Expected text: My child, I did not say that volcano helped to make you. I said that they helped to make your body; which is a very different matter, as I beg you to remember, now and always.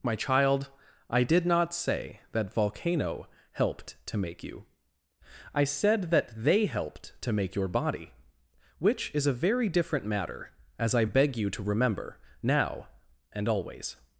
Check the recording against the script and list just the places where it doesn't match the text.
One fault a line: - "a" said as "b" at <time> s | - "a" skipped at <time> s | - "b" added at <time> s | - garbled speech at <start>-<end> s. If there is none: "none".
none